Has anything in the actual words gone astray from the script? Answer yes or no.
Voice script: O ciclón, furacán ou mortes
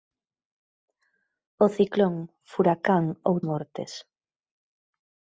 no